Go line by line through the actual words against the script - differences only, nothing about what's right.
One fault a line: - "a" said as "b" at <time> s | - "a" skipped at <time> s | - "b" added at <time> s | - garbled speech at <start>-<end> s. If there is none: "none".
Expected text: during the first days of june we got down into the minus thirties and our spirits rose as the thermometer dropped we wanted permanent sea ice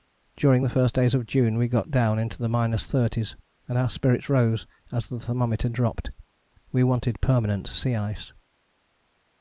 none